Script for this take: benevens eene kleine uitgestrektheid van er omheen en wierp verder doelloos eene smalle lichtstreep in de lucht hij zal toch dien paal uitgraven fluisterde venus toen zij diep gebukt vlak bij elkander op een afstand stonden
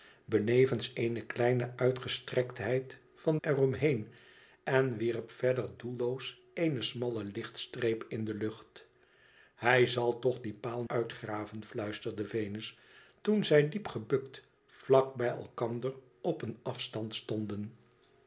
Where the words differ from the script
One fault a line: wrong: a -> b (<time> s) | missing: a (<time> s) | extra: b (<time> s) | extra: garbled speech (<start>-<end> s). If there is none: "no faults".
no faults